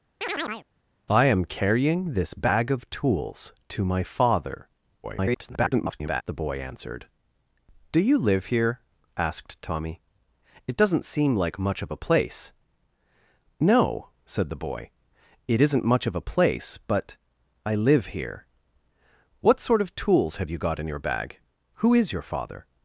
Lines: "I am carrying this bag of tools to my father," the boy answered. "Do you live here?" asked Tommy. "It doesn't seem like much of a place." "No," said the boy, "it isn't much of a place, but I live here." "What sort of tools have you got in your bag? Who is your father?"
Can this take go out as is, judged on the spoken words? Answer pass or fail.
fail